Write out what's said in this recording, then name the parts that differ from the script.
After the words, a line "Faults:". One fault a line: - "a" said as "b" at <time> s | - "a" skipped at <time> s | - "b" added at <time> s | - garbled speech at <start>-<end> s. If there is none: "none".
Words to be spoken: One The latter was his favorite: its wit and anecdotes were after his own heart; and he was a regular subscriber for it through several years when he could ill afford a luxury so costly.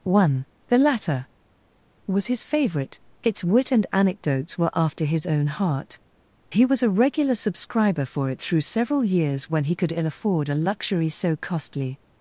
One The latter was his favorite: its wit and anecdotes were after his own heart; he was a regular subscriber for it through several years when he could ill afford a luxury so costly.
Faults:
- "and" skipped at 6.0 s